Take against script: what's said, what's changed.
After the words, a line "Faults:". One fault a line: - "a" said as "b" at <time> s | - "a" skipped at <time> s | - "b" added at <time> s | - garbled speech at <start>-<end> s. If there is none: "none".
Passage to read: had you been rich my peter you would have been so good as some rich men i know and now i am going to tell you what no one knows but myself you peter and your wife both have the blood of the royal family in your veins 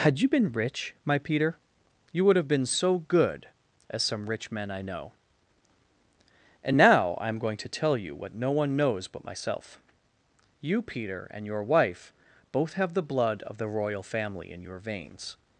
had you been rich my peter you would have been so good as some rich men i know and now i am going to tell you what no one knows but myself you peter and your wife both have the blood of the royal family in your veins
Faults:
none